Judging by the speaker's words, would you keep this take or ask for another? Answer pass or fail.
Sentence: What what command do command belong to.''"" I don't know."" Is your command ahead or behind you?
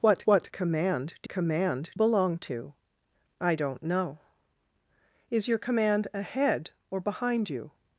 pass